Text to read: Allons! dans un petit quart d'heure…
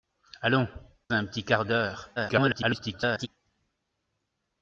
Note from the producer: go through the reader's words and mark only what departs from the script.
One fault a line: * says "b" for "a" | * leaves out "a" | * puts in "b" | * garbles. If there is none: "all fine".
* leaves out "dans"
* garbles